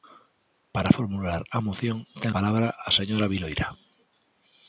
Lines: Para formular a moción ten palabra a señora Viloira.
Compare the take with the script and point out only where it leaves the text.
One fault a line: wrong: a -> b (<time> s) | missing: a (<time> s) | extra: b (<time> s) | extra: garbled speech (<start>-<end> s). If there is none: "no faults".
no faults